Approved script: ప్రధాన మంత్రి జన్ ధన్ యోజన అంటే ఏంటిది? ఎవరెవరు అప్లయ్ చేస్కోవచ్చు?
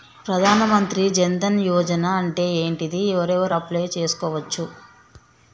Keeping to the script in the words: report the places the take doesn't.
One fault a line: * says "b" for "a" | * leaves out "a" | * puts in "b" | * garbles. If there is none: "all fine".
all fine